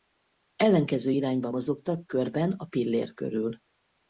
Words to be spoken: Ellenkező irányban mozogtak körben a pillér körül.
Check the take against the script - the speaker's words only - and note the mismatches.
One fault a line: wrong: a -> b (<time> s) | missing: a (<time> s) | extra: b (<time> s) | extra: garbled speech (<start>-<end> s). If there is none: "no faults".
no faults